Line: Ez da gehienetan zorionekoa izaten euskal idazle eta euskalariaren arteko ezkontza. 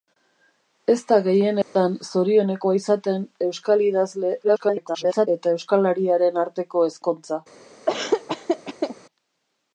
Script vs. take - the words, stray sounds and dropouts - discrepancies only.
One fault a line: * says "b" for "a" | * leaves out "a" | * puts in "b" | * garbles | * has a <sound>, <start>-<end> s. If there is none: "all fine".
* has a dropout, 1.6-1.8 s
* garbles
* has a laugh, 7.9-9.0 s